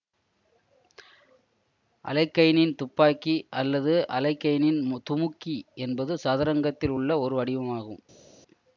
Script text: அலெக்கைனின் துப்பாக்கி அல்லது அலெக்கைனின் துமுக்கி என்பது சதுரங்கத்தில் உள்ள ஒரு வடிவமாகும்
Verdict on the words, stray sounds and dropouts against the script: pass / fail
pass